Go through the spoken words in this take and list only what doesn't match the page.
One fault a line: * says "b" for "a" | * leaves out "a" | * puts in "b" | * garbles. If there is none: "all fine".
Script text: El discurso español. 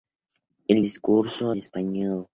all fine